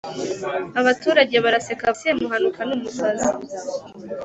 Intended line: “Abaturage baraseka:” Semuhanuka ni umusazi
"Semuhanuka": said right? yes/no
yes